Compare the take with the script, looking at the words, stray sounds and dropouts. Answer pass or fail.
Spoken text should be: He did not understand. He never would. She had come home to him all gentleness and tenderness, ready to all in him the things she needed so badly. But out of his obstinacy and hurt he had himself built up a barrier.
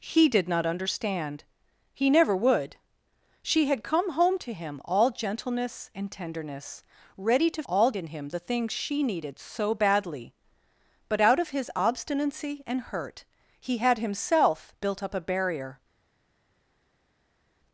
pass